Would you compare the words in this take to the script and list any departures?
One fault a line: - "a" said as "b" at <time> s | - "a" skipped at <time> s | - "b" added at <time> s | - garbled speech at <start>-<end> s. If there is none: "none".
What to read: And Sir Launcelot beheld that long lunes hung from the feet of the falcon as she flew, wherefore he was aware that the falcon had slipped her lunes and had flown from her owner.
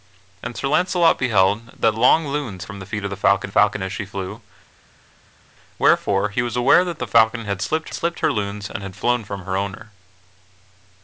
- "hung" skipped at 2.6 s
- "falcon" added at 3.5 s
- "slipped" added at 7.9 s